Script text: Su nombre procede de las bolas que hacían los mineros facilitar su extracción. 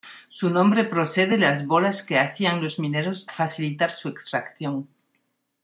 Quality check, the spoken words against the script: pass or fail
pass